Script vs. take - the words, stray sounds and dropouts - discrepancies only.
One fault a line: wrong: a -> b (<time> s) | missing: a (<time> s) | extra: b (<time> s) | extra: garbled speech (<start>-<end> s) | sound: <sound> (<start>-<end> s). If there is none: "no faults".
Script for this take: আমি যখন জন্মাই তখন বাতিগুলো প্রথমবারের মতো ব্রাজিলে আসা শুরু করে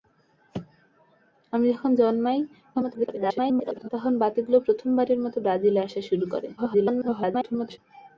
extra: garbled speech (2.7-3.9 s)
extra: garbled speech (6.6-7.8 s)